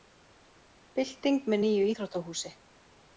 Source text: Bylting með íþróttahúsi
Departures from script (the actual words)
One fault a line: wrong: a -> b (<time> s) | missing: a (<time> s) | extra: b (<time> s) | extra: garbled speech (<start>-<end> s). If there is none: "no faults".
extra: nýju (1.6 s)